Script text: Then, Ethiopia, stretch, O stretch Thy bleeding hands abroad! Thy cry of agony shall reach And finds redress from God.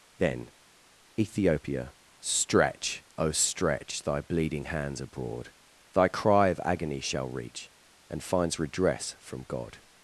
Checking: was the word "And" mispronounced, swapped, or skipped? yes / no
no